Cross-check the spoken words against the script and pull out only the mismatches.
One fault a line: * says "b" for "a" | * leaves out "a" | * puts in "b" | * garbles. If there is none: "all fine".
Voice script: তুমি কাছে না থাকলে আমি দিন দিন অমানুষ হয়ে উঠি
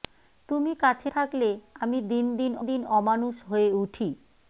* leaves out "না"
* puts in "দিন"